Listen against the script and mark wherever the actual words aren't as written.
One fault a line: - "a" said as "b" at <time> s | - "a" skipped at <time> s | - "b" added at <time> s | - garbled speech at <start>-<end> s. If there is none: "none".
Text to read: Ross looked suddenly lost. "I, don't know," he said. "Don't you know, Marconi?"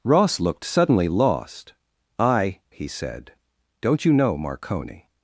- "don't know" skipped at 2.6 s